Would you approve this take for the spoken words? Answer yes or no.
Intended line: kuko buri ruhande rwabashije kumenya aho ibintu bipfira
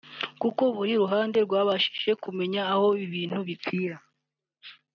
yes